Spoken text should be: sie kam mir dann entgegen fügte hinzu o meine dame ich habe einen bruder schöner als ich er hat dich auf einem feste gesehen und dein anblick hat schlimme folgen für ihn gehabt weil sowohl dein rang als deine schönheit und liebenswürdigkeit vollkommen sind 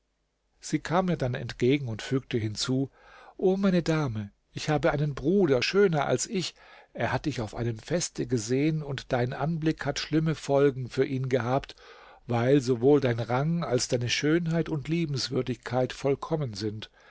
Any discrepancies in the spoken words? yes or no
yes